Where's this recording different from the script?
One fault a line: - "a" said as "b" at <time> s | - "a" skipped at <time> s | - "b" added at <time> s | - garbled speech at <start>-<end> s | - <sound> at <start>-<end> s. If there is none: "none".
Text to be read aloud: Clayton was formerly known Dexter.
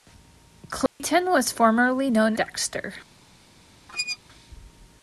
- dropout at 0.9-1.0 s
- squeak at 3.9-4.2 s